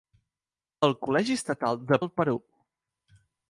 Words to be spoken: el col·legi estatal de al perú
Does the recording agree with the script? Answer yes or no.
yes